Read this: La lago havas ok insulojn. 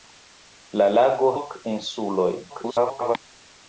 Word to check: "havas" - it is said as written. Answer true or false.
false